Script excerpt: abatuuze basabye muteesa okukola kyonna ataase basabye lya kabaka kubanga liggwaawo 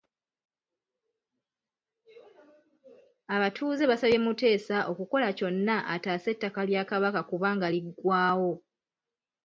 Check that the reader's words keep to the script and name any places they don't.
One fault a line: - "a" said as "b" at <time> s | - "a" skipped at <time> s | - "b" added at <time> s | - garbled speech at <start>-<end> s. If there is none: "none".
- "basabye" said as "ettaka" at 6.3 s